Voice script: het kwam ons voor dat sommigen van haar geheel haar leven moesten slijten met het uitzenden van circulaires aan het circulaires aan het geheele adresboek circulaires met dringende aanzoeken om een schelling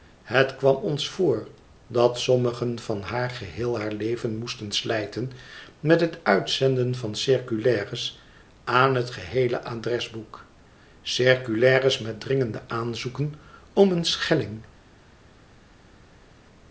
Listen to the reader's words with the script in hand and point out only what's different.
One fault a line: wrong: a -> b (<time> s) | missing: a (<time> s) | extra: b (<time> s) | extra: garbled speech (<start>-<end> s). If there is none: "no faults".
missing: circulaires aan het (9.1 s)